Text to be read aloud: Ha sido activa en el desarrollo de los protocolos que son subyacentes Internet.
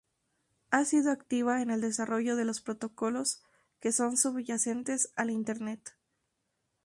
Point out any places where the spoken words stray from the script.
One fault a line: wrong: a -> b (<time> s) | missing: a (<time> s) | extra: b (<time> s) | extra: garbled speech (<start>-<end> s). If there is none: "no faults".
extra: al (5.2 s)